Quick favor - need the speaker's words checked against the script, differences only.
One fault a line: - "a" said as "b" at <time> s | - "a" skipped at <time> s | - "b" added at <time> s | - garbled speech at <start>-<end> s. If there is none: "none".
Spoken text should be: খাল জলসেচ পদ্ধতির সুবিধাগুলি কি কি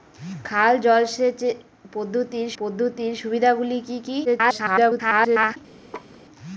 - "পদ্ধতির" added at 2.6 s
- garbled speech at 4.2-5.6 s